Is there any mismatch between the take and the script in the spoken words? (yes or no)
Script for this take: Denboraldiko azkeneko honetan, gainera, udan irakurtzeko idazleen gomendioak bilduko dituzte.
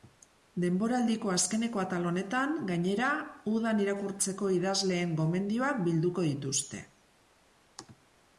yes